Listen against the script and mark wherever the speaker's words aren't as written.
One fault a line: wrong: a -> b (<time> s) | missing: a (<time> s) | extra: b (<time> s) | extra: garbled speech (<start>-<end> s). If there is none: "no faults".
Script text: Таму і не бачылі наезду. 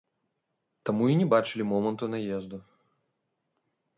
extra: моманту (1.7 s)